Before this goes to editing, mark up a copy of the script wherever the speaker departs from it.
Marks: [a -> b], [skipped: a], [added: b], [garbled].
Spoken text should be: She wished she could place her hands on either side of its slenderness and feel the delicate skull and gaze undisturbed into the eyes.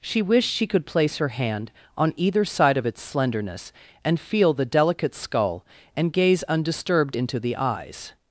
She wished she could place her [hands -> hand] on either side of its slenderness and feel the delicate skull and gaze undisturbed into the eyes.